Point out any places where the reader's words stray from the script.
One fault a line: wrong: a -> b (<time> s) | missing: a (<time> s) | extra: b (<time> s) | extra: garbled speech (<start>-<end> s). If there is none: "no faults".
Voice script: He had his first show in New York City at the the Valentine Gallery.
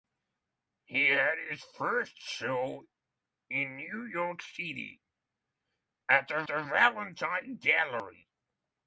no faults